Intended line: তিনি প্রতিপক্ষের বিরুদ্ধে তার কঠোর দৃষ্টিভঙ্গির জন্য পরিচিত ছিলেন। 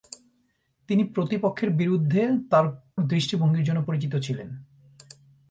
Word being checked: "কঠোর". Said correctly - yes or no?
no